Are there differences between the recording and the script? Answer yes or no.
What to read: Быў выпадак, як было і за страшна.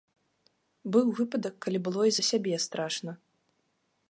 yes